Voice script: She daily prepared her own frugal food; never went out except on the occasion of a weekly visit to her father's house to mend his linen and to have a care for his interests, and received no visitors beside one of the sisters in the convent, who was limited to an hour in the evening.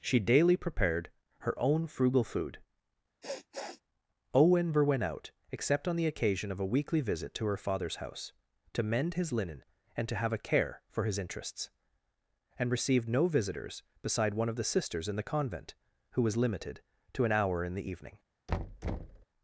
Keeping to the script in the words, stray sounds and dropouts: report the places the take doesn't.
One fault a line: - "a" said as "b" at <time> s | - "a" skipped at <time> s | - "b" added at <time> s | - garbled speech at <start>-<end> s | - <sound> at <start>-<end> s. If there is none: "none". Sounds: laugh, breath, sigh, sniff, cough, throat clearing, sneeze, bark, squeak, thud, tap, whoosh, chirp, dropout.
- sniff at 3.2-3.8 s
- "owen" added at 4.3 s
- thud at 18.5-19.3 s